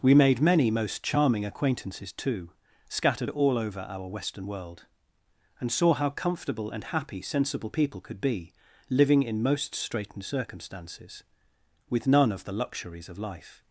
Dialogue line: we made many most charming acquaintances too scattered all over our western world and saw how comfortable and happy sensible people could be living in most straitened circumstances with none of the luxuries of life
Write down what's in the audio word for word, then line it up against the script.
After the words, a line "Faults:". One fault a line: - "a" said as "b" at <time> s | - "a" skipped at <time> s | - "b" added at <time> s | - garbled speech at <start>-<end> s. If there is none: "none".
we made many most charming acquaintances too scattered all over our western world and saw how comfortable and happy sensible people could be living in most straitened circumstances with none of the luxuries of life
Faults:
none